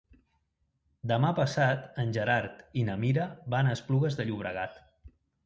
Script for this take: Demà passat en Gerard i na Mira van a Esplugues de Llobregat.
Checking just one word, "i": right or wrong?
right